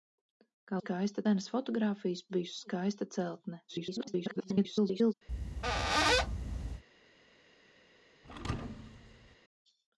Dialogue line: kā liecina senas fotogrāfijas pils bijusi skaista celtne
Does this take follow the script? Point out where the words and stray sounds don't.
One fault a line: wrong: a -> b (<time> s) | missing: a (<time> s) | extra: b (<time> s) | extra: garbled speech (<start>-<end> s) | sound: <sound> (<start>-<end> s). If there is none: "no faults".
wrong: liecina -> skaista (0.8 s)
missing: pils (2.2 s)
extra: garbled speech (3.7-5.1 s)
sound: squeak (5.3-6.8 s)
sound: thud (8.2-9.4 s)